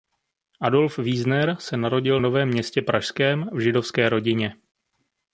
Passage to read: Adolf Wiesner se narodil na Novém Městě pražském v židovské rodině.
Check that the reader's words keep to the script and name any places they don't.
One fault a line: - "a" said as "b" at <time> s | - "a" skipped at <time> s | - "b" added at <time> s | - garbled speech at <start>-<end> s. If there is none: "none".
- "na" skipped at 2.2 s